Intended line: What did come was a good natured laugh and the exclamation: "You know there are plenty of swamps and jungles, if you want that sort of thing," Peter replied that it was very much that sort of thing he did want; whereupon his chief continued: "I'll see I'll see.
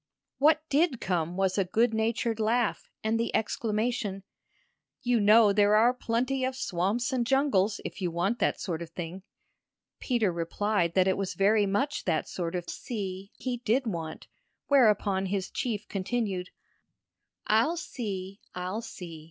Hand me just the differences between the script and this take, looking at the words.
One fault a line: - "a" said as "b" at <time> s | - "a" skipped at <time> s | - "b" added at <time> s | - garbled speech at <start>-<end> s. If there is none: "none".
- "thing" said as "see" at 12.7 s